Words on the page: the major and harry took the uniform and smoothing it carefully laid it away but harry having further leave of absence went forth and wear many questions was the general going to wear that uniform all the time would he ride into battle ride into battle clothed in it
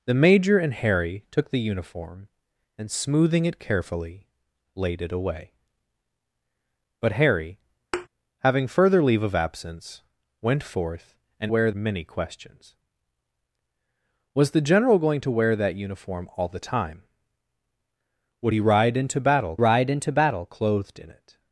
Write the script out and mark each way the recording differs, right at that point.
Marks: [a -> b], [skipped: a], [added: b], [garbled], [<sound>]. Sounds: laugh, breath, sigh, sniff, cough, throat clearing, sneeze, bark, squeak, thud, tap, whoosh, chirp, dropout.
the major and harry took the uniform and smoothing it carefully laid it away but harry [thud] having further leave of absence went forth and wear many questions was the general going to wear that uniform all the time would he ride into battle ride into battle clothed in it